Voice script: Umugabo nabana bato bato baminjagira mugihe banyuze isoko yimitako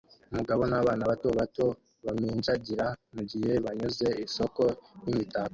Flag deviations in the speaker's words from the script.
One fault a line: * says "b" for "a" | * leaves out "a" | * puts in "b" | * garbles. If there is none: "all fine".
all fine